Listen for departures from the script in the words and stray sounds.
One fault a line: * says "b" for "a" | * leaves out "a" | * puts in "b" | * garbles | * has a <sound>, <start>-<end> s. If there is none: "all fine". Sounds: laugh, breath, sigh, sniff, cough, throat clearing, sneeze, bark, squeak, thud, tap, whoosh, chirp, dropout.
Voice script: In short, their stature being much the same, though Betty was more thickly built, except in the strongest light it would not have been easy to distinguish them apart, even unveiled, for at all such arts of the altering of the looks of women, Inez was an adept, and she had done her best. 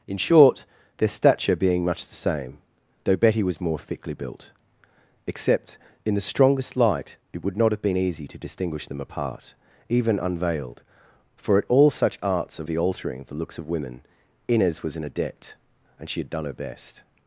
* leaves out "of"